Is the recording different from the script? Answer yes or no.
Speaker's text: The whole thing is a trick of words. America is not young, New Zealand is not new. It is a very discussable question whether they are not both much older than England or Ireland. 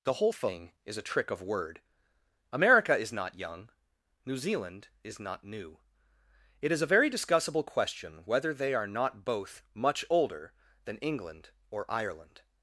yes